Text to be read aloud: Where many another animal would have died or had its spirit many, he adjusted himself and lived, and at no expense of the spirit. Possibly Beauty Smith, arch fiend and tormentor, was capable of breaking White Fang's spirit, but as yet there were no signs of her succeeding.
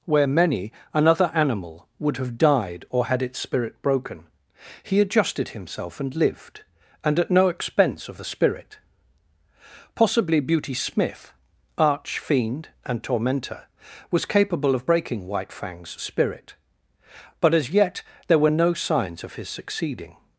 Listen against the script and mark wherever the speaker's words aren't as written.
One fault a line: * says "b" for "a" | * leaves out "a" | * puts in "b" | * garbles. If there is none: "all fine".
* says "broken" for "many"
* says "his" for "her"